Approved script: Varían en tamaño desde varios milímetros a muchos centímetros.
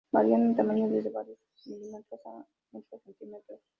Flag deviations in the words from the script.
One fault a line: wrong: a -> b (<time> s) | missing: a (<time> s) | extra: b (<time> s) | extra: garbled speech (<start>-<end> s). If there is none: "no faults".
no faults